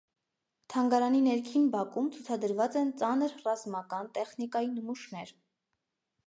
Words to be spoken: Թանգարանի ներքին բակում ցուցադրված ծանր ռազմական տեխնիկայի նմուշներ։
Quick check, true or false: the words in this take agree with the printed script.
false